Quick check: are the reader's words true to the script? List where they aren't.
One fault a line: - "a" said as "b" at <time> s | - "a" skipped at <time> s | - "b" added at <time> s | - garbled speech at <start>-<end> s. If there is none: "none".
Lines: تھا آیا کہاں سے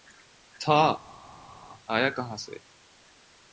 none